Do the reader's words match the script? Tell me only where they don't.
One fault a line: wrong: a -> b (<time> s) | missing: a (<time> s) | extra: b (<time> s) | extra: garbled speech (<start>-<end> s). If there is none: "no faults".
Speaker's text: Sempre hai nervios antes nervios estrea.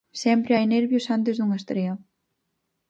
wrong: nervios -> dunha (1.4 s)